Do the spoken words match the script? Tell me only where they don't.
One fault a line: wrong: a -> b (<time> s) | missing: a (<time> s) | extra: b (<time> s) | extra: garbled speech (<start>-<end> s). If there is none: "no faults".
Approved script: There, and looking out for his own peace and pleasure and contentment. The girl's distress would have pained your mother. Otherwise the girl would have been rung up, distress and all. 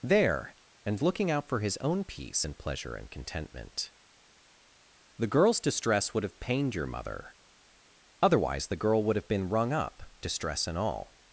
no faults